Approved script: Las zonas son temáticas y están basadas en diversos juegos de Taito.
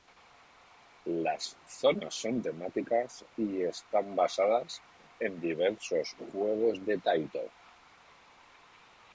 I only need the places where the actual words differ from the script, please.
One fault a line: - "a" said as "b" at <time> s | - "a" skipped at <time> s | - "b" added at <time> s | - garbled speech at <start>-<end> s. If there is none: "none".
none